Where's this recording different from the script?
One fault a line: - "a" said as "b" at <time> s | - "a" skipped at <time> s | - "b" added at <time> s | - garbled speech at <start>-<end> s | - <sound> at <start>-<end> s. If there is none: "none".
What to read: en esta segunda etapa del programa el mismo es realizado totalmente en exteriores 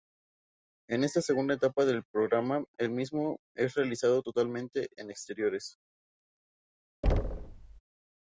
- thud at 7.0-7.8 s